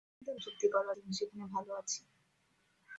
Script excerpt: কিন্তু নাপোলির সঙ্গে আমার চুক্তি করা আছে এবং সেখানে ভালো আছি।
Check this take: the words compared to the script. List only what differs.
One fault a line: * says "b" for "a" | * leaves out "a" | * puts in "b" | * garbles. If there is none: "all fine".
* leaves out "নাপোলির সঙ্গে আমার"
* leaves out "আছে"